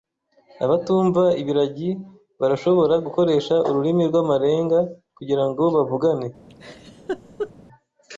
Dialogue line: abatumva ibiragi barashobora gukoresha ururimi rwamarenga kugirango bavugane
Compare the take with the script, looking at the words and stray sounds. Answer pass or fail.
fail